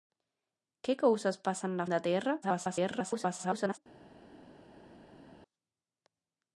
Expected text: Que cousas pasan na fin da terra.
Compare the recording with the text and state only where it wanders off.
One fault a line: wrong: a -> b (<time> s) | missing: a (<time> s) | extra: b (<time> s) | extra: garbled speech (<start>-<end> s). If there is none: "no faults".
missing: fin (1.9 s)
extra: garbled speech (2.4-3.8 s)